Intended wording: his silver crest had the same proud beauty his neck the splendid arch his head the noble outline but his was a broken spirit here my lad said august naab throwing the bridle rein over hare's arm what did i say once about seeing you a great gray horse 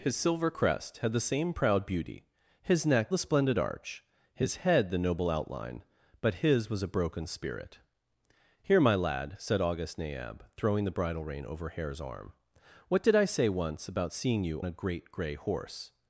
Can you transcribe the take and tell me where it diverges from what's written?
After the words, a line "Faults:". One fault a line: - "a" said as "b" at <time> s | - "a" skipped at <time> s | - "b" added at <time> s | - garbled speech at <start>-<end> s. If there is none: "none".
his silver crest had the same proud beauty his neck the splendid arch his head the noble outline but his was a broken spirit here my lad said august naab throwing the bridle rein over hare's arm what did i say once about seeing you a great gray horse
Faults:
none